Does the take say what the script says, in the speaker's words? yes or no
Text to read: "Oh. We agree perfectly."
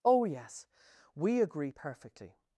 no